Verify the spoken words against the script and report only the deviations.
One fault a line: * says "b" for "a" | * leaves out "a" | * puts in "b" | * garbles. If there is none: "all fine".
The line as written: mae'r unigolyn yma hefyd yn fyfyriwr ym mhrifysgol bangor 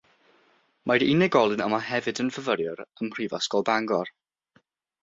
all fine